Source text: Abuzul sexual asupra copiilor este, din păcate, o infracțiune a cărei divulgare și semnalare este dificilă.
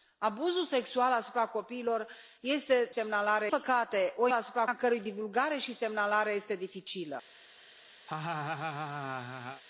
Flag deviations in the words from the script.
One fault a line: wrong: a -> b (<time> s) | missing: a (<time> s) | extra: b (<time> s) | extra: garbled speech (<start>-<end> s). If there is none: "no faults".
wrong: din -> semnalare (2.9 s)
wrong: infracțiune -> asupra (4.3 s)